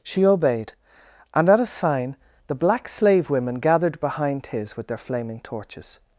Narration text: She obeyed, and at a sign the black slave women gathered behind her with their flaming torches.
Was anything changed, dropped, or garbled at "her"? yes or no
yes